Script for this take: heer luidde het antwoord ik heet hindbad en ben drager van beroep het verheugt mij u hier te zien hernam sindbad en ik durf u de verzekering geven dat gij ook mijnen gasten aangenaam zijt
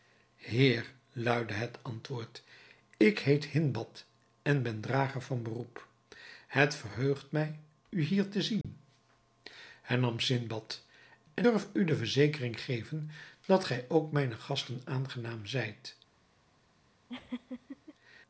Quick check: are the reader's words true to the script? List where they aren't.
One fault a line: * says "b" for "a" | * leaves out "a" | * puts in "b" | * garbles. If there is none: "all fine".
* leaves out "ik"